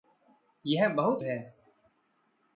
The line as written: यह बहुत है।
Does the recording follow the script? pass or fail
pass